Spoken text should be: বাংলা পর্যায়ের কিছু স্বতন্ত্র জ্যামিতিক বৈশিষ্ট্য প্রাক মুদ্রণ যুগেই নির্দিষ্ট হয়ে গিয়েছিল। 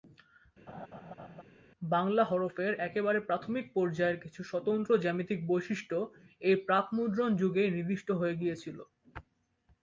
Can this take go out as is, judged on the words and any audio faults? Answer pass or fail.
fail